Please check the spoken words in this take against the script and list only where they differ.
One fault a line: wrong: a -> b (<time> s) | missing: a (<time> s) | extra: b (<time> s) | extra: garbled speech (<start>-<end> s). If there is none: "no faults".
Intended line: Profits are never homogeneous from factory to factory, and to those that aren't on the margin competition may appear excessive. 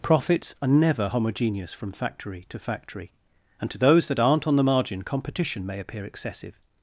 no faults